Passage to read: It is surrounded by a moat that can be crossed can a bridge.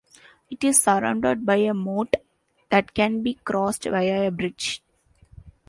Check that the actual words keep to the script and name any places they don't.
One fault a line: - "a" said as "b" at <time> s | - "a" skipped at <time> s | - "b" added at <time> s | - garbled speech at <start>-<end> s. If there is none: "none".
- "can" said as "via" at 3.8 s